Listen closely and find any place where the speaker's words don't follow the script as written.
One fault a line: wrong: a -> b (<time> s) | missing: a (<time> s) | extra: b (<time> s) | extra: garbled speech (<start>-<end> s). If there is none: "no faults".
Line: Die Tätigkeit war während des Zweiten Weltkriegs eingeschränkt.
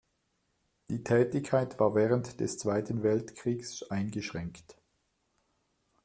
no faults